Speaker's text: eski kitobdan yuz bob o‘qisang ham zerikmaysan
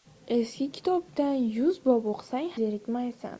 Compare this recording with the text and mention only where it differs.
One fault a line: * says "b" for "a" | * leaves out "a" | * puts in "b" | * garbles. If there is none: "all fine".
* leaves out "ham"